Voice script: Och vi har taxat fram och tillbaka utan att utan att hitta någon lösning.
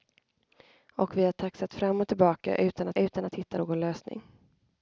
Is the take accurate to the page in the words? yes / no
yes